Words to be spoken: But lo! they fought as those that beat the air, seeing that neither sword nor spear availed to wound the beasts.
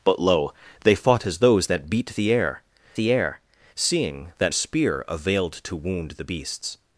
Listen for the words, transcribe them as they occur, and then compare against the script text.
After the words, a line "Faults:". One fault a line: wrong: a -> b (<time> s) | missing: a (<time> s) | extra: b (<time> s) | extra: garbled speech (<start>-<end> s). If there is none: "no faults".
But lo! they fought as those that beat the air the air, seeing that spear availed to wound the beasts.
Faults:
extra: the air (3.0 s)
missing: neither sword nor (4.5 s)